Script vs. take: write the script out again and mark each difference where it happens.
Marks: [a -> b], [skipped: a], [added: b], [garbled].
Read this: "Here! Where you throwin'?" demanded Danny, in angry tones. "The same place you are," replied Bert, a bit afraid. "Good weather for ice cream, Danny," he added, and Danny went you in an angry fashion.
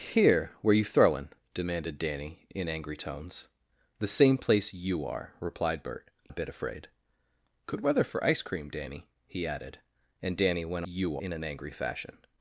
"Here! Where you throwin'?" demanded Danny, in angry tones. "The same place you are," replied Bert, a bit afraid. "Good weather for ice cream, Danny," he added, and Danny went you in an angry fashion.